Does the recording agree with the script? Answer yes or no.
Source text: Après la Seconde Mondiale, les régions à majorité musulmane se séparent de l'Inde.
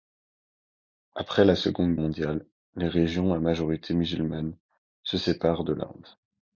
yes